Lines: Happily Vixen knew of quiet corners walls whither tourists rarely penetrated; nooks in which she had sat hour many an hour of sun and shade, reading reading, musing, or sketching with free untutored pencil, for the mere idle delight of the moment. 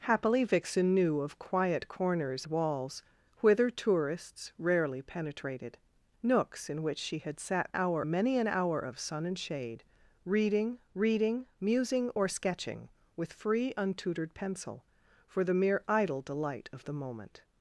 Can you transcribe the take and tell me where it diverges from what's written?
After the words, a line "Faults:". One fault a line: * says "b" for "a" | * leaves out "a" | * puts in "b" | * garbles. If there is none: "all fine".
Happily Vixen knew of quiet corners walls whither tourists rarely penetrated; nooks in which she had sat hour many an hour of sun and shade, reading reading, musing, or sketching with free untutored pencil, for the mere idle delight of the moment.
Faults:
all fine